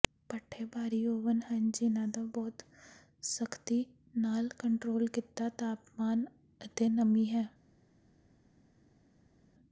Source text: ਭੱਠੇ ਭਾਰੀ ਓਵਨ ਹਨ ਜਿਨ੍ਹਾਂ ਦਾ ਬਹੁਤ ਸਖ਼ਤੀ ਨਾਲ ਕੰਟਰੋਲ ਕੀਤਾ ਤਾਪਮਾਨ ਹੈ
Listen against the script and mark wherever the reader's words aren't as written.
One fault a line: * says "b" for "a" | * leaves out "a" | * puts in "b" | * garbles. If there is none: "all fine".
* puts in "ਅਤੇ ਨਮੀ"